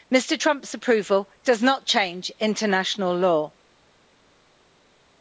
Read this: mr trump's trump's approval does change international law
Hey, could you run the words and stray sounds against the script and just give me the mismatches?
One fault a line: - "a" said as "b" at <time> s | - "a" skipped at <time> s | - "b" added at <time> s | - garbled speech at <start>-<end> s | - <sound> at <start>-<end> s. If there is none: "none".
- "trump's" skipped at 0.7 s
- "not" added at 1.6 s